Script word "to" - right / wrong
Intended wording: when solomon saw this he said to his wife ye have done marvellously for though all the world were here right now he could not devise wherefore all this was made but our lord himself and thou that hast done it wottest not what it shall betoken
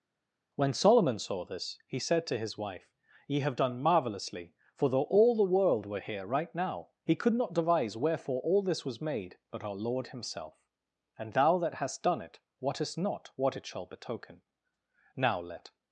right